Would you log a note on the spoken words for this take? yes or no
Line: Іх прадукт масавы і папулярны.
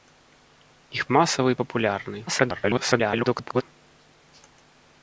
yes